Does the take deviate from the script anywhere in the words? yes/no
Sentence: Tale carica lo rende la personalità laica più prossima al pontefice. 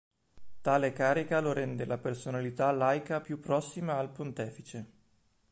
no